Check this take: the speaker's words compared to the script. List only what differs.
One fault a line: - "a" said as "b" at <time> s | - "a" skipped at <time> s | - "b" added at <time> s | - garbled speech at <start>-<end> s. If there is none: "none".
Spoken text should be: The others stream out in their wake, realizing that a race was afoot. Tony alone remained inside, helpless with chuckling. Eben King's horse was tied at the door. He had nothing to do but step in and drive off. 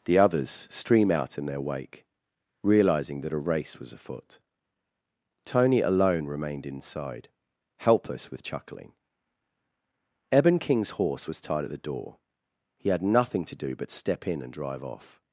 none